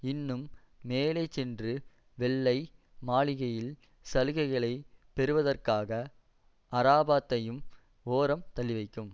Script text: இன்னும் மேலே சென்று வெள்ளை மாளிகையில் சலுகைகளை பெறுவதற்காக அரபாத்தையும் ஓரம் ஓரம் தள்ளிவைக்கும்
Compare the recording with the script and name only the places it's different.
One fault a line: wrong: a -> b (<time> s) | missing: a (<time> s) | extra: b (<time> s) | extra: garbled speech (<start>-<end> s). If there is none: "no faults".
missing: ஓரம் (8.5 s)